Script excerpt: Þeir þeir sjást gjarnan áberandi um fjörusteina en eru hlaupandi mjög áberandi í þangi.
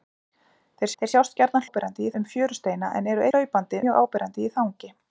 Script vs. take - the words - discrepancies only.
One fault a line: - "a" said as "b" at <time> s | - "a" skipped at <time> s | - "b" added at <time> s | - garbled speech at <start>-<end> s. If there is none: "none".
none